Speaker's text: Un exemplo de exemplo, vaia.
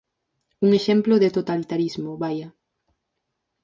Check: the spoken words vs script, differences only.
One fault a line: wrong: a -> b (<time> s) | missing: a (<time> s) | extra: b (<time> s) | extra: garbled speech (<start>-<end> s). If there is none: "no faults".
wrong: exemplo -> totalitarismo (1.4 s)